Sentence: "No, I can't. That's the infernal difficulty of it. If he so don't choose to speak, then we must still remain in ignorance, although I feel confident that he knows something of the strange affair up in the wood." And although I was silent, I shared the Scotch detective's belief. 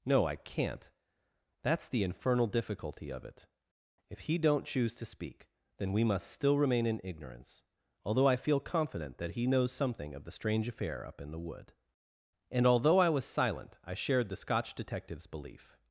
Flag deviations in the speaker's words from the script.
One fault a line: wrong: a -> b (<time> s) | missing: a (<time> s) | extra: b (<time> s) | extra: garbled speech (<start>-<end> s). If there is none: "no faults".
missing: so (4.4 s)